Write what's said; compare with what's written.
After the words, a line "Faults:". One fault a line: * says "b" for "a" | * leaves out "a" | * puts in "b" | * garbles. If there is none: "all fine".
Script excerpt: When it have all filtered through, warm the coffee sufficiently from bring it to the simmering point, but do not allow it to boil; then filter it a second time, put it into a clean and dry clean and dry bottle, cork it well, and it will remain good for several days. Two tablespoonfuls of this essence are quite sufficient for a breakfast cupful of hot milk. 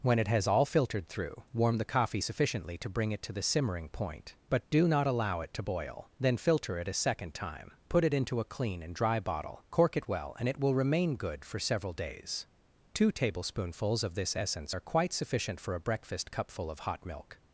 When it has all filtered through, warm the coffee sufficiently to bring it to the simmering point, but do not allow it to boil; then filter it a second time, put it into a clean and dry bottle, cork it well, and it will remain good for several days. Two tablespoonfuls of this essence are quite sufficient for a breakfast cupful of hot milk.
Faults:
* says "has" for "have"
* says "to" for "from"
* leaves out "clean and dry"